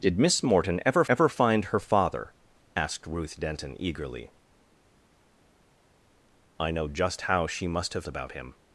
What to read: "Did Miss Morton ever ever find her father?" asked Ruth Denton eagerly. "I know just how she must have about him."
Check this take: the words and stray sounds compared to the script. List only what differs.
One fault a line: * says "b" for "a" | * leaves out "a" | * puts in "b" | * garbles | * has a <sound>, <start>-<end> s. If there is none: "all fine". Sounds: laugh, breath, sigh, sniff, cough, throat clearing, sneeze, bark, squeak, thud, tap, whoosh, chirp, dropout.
all fine